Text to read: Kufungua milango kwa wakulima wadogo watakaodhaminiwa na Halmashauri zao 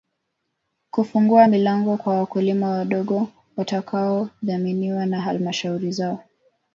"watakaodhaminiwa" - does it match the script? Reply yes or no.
yes